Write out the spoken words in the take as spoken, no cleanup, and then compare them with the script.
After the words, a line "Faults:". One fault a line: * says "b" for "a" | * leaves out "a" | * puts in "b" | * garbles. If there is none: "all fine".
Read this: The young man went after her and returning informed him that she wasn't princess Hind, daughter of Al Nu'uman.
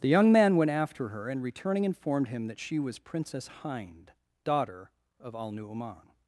The young man went after her and returning informed him that she was princess Hind, daughter of Al Nu'uman.
Faults:
* says "was" for "wasn't"